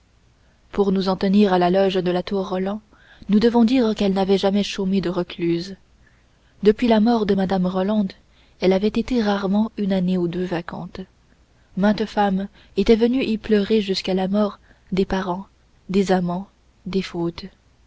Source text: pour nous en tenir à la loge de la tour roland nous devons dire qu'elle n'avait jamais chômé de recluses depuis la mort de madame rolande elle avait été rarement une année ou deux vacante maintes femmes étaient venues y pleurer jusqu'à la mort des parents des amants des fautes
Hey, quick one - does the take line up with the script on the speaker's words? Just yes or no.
yes